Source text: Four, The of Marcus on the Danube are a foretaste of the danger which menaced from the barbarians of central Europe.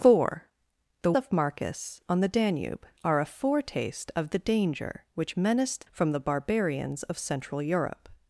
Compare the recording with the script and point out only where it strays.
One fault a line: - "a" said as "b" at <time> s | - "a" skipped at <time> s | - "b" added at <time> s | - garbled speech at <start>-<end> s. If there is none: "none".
none